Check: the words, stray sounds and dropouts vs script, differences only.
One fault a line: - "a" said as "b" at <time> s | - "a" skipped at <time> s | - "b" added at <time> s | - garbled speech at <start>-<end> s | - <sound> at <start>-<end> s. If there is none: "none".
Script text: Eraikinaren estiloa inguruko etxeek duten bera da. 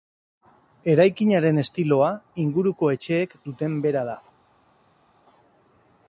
none